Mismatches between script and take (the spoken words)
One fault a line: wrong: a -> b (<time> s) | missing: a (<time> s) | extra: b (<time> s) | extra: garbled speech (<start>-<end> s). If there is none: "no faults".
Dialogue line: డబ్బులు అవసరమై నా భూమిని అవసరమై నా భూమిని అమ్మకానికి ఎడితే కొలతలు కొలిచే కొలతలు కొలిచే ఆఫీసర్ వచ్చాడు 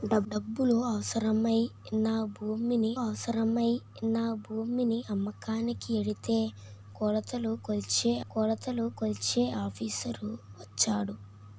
no faults